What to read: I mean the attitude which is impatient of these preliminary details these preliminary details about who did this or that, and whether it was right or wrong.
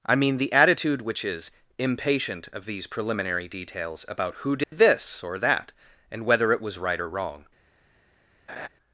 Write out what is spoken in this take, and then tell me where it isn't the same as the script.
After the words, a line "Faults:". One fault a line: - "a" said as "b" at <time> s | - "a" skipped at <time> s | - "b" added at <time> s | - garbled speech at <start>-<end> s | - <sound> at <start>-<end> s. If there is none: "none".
I mean the attitude which is impatient of these preliminary details about who did this or that, and whether it was right or wrong.
Faults:
- "these preliminary details" skipped at 4.0 s
- dropout at 4.6-4.7 s
- laugh at 8.5-8.7 s